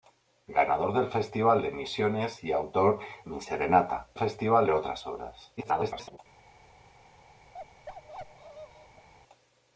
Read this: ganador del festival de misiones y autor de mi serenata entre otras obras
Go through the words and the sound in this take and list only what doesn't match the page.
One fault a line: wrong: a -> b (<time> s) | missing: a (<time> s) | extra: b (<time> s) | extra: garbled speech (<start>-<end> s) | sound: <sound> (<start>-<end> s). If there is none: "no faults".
missing: de (3.0 s)
wrong: entre -> festival (4.2 s)
extra: garbled speech (5.6-6.2 s)
sound: bark (7.5-9.1 s)